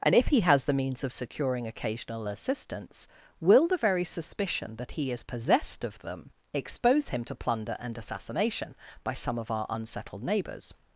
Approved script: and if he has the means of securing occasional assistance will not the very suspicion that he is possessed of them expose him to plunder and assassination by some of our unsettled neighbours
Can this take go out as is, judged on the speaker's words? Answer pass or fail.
fail